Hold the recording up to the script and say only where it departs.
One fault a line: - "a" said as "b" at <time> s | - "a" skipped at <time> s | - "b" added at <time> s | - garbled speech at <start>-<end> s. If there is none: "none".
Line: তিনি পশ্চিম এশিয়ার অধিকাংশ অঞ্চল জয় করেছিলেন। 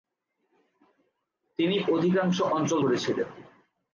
- "পশ্চিম এশিয়ার" skipped at 1.8 s
- "জয়" skipped at 2.8 s